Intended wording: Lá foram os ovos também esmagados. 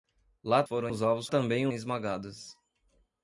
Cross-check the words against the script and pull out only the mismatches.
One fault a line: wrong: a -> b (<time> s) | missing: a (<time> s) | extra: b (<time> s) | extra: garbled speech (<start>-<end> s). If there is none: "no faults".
no faults